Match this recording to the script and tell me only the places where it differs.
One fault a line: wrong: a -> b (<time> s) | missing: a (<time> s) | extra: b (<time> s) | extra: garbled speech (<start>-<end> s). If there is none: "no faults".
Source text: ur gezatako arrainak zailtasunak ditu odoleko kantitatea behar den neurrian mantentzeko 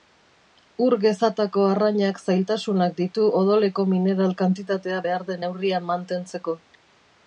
extra: mineral (3.9 s)